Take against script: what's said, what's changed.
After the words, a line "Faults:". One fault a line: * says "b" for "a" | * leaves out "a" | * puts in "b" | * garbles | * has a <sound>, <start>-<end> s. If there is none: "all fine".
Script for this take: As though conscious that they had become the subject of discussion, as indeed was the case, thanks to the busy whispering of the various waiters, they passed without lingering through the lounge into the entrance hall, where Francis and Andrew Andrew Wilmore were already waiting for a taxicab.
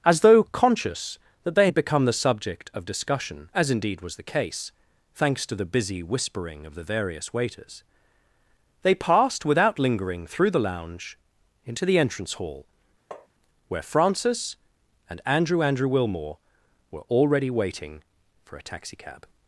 As though conscious that they had become the subject of discussion, as indeed was the case, thanks to the busy whispering of the various waiters, they passed without lingering through the lounge into the entrance hall, where Francis and Andrew Andrew Wilmore were already waiting for a taxicab.
Faults:
* has a tap, 13.1-13.3 s